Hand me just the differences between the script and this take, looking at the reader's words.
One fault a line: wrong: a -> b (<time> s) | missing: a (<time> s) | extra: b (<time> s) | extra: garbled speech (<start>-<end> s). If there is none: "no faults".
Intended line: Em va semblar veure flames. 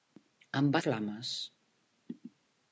missing: semblar veure (0.8 s)